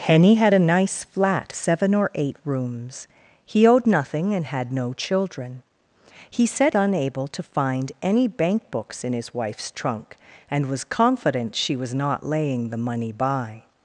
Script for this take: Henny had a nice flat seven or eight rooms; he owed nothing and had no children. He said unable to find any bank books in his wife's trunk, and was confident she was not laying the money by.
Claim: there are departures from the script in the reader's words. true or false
false